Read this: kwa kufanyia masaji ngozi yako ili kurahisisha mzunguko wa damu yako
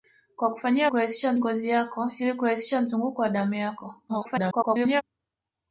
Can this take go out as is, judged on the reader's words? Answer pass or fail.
fail